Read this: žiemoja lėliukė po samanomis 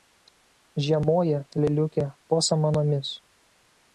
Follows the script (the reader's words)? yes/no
yes